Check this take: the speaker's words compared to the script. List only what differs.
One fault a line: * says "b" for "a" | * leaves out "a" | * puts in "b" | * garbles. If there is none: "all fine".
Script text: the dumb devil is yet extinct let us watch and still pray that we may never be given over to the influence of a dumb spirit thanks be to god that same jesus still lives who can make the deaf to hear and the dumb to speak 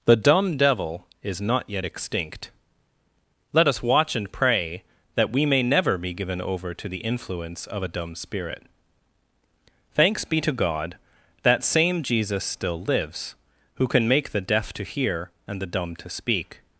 * puts in "not"
* leaves out "still"